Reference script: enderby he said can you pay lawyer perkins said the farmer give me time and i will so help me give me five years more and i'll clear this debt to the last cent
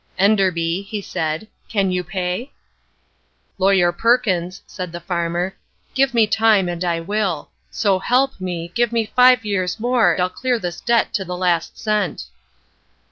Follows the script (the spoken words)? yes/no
no